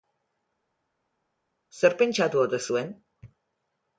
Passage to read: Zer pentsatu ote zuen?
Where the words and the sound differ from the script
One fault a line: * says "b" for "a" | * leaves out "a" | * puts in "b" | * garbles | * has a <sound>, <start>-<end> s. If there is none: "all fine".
all fine